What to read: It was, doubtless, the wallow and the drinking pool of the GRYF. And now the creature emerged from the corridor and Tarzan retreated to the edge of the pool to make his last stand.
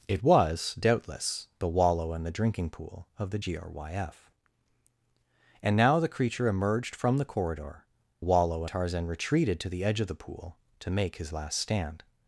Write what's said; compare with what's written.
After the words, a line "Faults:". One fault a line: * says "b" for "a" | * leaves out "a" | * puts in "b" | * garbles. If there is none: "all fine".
It was, doubtless, the wallow and the drinking pool of the GRYF. And now the creature emerged from the corridor wallow Tarzan retreated to the edge of the pool to make his last stand.
Faults:
* says "wallow" for "and"